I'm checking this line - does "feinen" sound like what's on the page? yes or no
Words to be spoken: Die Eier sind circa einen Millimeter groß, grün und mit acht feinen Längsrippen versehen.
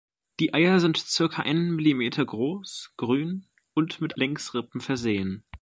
no